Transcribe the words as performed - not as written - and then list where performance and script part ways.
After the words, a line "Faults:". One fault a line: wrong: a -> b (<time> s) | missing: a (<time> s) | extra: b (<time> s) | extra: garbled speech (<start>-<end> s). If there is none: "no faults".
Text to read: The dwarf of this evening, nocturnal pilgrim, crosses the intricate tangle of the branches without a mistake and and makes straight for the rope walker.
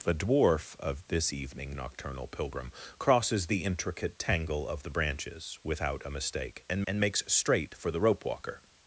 The dwarf of this evening, nocturnal pilgrim, crosses the intricate tangle of the branches without a mistake and and makes straight for the rope walker.
Faults:
no faults